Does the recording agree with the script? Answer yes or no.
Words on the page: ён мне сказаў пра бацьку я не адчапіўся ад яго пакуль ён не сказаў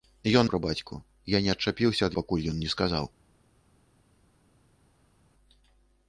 no